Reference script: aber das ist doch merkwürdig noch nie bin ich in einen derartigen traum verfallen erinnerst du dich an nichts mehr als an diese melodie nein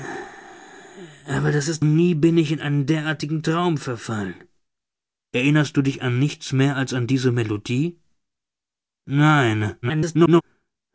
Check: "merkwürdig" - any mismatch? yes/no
yes